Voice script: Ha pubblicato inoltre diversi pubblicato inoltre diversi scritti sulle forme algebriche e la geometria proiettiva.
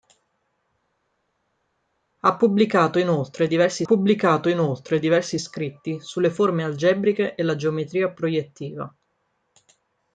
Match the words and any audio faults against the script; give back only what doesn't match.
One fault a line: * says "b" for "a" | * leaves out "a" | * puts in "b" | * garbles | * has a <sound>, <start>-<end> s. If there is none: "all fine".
all fine